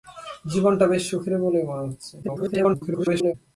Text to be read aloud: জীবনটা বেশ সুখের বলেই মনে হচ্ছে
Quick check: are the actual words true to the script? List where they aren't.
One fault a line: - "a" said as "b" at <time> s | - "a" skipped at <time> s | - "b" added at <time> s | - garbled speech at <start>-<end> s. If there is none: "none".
- garbled speech at 2.2-3.3 s